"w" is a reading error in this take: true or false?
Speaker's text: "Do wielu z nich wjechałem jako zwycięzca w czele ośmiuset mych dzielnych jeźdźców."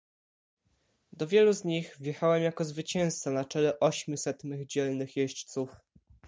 true